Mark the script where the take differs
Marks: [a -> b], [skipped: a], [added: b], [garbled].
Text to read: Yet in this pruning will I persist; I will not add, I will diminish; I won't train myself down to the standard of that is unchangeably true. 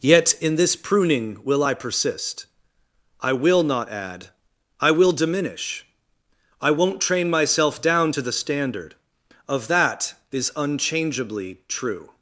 Yet in this pruning will I persist; I will not add, I will diminish; I won't train myself down to the standard of that is unchangeably true.